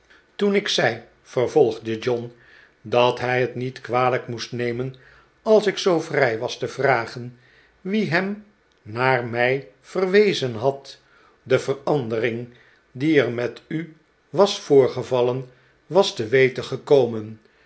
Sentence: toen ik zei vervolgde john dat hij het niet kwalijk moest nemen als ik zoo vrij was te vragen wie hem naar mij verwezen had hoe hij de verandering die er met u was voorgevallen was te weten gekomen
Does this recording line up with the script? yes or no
no